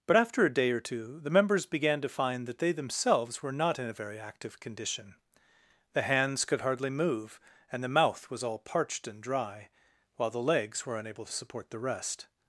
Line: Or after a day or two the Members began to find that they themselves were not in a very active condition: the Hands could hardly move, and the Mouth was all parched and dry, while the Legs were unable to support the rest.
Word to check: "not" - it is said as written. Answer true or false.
true